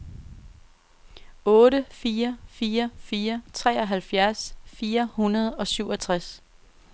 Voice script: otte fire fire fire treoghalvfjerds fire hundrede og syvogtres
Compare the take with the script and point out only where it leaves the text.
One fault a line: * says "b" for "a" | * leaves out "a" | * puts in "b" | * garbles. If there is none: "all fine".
all fine